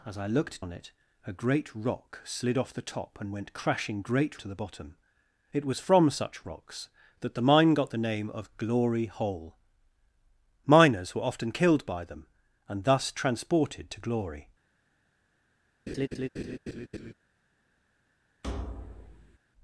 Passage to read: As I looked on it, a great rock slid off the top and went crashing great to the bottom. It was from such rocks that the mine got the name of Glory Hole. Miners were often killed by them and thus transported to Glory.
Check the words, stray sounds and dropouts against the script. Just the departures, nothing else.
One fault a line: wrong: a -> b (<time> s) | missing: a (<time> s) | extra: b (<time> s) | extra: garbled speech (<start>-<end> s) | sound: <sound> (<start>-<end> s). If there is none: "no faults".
sound: laugh (15.9-17.1 s)
sound: thud (18.4-19.4 s)